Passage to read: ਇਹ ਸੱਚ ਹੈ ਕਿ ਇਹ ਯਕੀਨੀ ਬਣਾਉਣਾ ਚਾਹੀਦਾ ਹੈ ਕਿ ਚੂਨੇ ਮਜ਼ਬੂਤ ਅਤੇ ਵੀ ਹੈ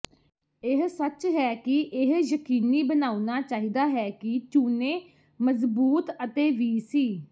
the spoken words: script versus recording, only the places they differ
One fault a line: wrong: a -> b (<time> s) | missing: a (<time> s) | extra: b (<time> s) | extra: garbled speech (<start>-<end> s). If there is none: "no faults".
wrong: ਹੈ -> ਸੀ (6.8 s)